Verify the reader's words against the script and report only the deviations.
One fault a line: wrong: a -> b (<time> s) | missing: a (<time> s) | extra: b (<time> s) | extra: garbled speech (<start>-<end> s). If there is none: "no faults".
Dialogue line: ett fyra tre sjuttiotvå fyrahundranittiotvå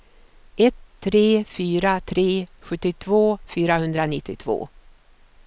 extra: tre (1.0 s)